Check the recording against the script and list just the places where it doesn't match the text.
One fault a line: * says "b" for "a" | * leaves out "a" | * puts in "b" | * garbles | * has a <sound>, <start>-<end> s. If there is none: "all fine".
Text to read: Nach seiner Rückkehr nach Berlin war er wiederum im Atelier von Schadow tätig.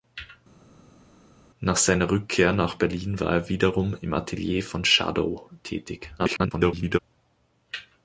* garbles